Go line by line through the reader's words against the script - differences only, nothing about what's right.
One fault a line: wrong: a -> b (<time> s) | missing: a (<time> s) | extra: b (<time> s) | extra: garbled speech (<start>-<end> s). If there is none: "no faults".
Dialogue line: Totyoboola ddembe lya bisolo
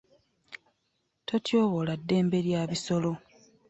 no faults